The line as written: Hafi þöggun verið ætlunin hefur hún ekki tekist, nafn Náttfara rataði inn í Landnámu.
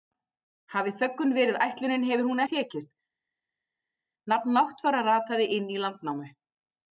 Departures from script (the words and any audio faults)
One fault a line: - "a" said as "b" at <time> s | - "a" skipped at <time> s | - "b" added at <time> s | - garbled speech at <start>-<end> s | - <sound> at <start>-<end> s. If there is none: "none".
- "ekki" skipped at 2.4 s